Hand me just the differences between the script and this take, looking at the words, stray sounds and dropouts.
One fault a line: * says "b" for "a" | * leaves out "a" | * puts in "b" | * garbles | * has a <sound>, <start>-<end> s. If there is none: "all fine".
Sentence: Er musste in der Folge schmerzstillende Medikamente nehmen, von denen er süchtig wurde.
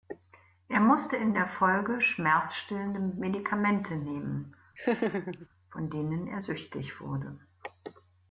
* has a laugh, 4.8-5.5 s